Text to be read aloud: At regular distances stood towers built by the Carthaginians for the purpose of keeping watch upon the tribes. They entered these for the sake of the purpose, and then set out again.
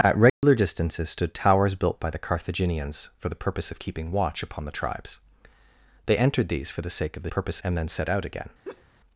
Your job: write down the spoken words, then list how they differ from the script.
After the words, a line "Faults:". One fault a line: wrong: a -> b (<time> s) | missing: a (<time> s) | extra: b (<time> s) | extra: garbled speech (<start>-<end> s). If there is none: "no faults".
At regular distances stood towers built by the Carthaginians for the purpose of keeping watch upon the tribes. They entered these for the sake of the purpose, and then set out again.
Faults:
no faults